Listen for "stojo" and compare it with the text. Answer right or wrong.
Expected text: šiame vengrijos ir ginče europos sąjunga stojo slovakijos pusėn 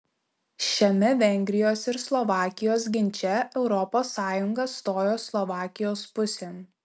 right